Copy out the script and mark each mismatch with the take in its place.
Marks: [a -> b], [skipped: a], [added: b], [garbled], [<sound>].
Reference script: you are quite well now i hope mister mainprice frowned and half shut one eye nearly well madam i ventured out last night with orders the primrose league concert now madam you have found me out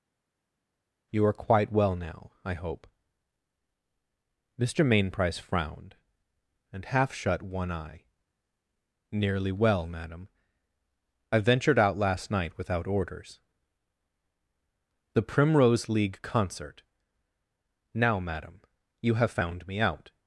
you are quite well now i hope mister mainprice frowned and half shut one eye nearly well madam i ventured out last night [with -> without] orders the primrose league concert now madam you have found me out